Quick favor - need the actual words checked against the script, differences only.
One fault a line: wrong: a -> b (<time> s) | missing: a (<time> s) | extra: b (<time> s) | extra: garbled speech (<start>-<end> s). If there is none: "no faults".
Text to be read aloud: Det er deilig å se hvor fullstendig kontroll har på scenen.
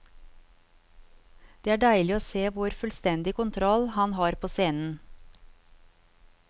extra: han (4.0 s)